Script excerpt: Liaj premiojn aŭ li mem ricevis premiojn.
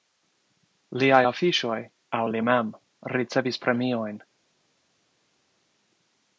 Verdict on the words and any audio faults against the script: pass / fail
fail